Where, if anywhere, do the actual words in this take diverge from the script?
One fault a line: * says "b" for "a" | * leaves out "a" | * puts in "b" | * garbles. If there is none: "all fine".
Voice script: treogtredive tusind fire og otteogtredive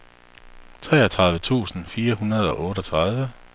* puts in "hundrede"